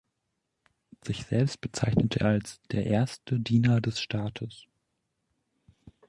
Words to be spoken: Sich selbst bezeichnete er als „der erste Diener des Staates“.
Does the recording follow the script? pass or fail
pass